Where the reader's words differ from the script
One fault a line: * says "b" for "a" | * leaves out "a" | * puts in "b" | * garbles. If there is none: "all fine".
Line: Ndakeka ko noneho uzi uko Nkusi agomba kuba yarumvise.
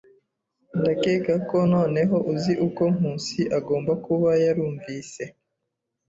all fine